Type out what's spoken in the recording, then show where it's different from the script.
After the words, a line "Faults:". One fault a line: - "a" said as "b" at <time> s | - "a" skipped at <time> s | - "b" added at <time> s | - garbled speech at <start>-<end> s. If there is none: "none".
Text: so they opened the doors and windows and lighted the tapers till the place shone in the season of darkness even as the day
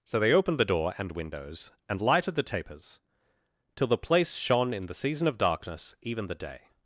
so they opened the door and windows and lighted the tapers till the place shone in the season of darkness even the day
Faults:
- "doors" said as "door" at 0.7 s
- "as" skipped at 6.3 s